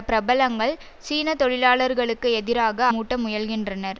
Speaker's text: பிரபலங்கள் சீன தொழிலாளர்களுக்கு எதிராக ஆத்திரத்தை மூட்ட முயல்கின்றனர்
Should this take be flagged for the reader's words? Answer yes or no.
yes